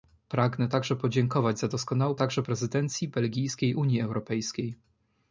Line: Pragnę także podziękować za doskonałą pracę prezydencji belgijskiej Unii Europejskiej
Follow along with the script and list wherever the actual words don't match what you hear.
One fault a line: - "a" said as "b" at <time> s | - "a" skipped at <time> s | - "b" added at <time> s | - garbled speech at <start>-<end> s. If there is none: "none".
- "pracę" said as "także" at 2.1 s